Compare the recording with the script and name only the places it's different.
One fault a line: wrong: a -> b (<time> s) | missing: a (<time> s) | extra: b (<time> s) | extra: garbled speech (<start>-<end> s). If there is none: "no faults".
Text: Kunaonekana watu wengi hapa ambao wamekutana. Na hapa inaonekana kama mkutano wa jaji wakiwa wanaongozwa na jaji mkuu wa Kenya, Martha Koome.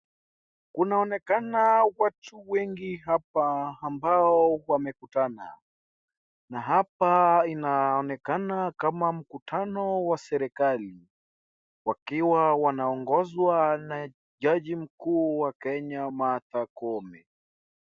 wrong: jaji -> serikali (10.2 s)